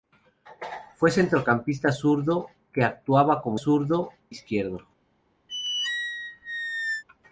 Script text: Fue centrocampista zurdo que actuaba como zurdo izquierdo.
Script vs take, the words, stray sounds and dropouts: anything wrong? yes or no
yes